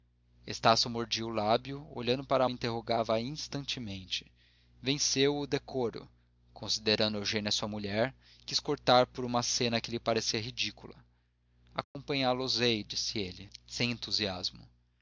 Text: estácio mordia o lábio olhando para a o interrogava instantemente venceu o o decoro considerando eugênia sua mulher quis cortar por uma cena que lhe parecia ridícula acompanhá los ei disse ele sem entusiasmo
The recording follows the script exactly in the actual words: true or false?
true